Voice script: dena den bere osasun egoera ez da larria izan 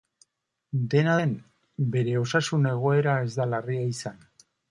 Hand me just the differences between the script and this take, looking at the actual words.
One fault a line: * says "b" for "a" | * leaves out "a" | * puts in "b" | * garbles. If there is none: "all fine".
all fine